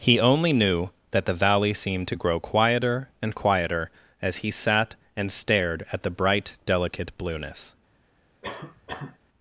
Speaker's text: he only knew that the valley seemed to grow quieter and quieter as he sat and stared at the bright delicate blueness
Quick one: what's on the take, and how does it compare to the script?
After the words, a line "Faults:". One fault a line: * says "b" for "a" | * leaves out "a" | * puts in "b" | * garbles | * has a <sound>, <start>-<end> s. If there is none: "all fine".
he only knew that the valley seemed to grow quieter and quieter as he sat and stared at the bright delicate blueness
Faults:
* has a cough, 8.4-9.2 s